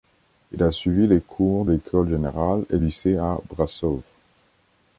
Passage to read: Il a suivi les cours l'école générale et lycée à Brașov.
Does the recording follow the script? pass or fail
pass